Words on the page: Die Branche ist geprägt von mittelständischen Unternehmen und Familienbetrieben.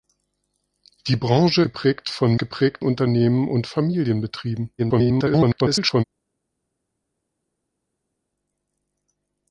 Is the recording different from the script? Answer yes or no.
yes